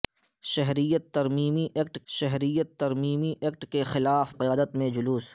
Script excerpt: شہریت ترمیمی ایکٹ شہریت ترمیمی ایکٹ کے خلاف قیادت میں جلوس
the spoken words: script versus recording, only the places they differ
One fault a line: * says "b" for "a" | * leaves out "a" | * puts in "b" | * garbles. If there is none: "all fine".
all fine